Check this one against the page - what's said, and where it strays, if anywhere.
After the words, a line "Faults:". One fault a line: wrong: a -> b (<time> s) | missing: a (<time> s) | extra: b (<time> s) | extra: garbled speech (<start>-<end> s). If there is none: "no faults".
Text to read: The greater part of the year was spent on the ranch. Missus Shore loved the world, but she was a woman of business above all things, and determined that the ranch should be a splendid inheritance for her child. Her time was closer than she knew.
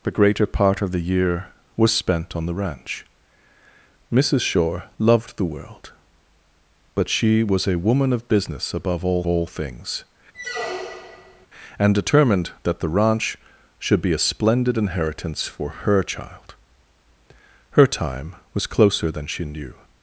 The greater part of the year was spent on the ranch. Missus Shore loved the world, but she was a woman of business above all all things, and determined that the ranch should be a splendid inheritance for her child. Her time was closer than she knew.
Faults:
extra: all (9.3 s)